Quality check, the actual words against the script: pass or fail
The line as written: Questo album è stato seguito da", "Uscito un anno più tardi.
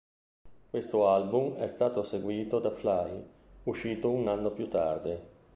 fail